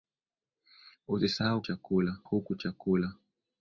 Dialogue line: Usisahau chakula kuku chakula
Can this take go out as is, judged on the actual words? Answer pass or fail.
pass